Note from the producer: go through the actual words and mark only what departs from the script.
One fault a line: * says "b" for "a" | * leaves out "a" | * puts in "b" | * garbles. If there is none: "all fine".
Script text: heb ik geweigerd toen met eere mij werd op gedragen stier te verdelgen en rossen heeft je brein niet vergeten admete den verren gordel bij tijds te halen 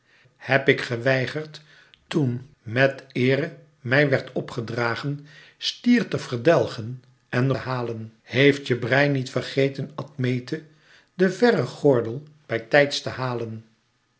* says "halen" for "rossen"